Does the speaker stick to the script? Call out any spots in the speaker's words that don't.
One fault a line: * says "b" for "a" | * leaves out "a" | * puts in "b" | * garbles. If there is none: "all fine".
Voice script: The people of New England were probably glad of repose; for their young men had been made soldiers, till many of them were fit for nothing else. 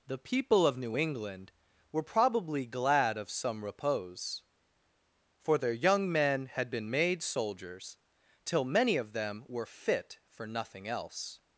* puts in "some"